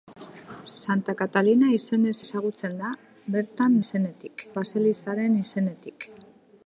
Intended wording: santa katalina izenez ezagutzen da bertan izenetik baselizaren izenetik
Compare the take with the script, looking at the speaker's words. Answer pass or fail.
pass